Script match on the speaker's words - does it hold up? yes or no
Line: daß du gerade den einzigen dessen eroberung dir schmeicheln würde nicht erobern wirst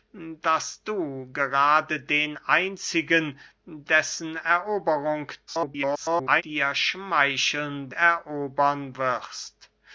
no